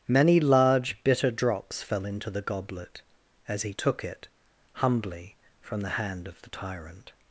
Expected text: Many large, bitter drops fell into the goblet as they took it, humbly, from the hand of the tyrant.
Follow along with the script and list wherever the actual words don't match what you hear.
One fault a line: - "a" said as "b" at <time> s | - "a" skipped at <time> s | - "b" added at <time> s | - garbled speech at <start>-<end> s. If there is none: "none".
- "they" said as "he" at 3.6 s